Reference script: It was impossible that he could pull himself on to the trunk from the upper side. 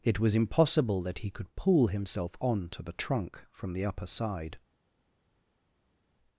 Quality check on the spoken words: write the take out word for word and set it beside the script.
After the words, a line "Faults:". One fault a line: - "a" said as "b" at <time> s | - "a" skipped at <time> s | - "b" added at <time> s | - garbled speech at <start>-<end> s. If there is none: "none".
It was impossible that he could pull himself on to the trunk from the upper side.
Faults:
none